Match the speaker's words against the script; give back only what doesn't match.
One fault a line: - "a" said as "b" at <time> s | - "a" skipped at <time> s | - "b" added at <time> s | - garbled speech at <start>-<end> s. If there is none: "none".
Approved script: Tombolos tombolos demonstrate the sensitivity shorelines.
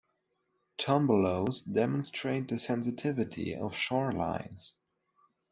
- "tombolos" skipped at 1.6 s
- "of" added at 3.5 s